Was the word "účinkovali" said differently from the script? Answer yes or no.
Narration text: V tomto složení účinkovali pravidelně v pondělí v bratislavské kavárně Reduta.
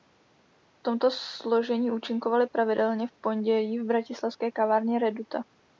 no